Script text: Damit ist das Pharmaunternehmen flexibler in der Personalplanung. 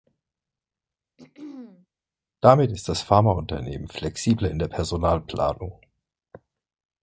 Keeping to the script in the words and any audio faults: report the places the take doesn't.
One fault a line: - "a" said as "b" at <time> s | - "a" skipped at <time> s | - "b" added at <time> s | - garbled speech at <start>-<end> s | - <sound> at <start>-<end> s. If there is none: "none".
- throat clearing at 1.2-1.9 s